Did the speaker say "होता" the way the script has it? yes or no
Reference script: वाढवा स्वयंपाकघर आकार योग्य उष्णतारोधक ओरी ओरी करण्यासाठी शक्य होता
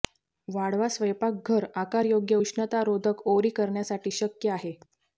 no